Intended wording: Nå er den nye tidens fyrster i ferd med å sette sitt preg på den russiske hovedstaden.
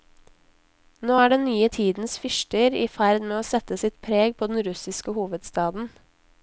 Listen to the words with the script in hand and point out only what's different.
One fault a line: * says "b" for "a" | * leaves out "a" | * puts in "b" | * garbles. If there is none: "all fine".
all fine